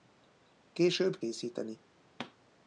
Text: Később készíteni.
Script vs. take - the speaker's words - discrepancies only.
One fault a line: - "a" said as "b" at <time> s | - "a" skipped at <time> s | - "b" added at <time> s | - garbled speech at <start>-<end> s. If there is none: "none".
none